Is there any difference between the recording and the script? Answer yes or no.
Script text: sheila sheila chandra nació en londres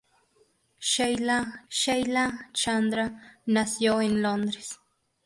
no